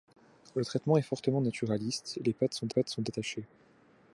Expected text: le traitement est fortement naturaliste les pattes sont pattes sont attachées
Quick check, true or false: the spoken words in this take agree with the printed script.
true